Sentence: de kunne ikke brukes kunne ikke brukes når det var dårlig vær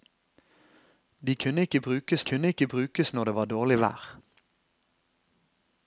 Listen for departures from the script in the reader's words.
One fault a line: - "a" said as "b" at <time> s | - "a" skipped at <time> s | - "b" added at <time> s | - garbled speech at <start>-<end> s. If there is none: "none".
none